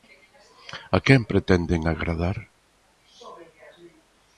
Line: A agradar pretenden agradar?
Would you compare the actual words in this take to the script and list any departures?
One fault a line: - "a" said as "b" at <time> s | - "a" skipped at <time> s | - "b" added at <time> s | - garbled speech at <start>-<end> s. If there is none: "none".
- "agradar" said as "quen" at 1.1 s